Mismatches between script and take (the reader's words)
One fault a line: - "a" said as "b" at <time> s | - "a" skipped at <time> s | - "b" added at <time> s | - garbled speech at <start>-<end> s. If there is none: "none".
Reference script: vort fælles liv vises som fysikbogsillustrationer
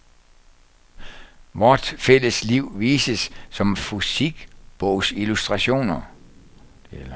none